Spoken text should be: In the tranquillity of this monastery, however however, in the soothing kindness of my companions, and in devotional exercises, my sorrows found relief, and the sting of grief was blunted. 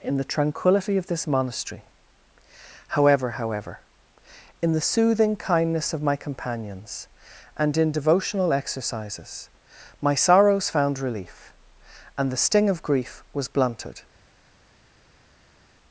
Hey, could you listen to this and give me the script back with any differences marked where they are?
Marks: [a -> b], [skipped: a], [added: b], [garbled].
In the tranquillity of this monastery, however however, in the soothing kindness of my companions, and in devotional exercises, my sorrows found relief, and the sting of grief was blunted.